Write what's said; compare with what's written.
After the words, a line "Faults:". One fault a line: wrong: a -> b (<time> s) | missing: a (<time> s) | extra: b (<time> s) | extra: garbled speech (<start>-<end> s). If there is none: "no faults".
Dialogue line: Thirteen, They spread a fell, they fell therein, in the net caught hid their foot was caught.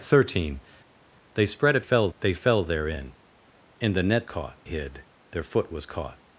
Thirteen, They spread a fell, they fell therein, in the net caught hid their foot was caught.
Faults:
no faults